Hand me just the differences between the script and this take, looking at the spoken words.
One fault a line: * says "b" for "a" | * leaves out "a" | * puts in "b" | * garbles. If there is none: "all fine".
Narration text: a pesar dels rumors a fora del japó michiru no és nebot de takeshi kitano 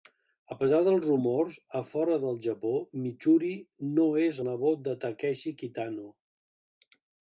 all fine